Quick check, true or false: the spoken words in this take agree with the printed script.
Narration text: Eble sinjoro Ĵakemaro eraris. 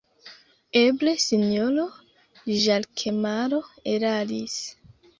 true